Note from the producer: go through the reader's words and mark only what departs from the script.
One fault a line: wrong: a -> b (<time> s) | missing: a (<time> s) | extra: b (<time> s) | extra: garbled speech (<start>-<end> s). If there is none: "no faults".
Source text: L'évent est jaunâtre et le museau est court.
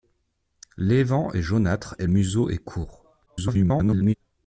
missing: le (2.1 s)
extra: garbled speech (3.3-4.1 s)